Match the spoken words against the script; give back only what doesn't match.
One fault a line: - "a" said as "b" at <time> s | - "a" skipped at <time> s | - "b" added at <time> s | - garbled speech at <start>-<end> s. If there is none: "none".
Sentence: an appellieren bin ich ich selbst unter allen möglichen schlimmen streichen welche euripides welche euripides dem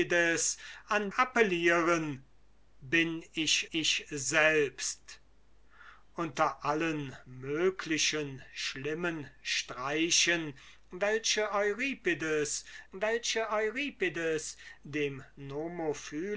none